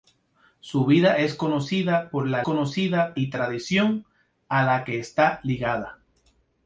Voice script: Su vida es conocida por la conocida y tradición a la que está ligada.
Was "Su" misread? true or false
false